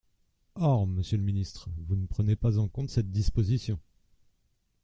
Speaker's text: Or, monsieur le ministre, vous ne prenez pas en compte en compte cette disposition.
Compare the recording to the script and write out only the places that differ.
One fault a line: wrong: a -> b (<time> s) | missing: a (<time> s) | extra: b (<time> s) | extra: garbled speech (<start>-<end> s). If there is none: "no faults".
missing: en compte (2.9 s)